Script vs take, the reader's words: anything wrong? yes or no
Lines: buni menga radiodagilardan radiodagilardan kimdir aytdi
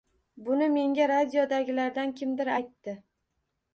yes